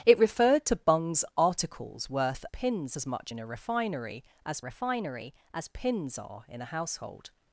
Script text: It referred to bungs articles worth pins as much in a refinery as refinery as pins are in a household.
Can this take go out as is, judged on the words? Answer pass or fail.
pass